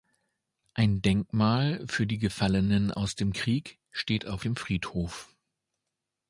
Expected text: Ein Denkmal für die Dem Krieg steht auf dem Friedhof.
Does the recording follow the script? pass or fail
fail